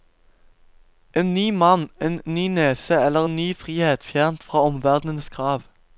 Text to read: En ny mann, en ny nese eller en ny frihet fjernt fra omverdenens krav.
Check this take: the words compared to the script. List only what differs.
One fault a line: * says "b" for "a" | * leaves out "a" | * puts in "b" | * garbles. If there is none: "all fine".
all fine